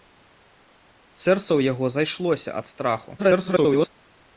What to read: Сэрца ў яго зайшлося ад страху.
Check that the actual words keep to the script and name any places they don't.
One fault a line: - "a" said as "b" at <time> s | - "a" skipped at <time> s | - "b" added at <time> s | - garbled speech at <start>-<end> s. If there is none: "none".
- garbled speech at 3.2-3.9 s